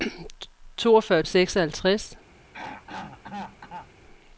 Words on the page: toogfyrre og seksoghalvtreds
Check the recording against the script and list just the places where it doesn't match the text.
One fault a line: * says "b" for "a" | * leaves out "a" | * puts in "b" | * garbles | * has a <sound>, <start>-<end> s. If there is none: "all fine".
* has a throat clearing, 2.5-3.9 s